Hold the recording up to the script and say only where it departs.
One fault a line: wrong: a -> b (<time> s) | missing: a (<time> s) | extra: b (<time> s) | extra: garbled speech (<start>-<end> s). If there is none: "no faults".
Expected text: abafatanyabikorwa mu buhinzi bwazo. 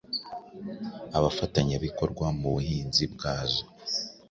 no faults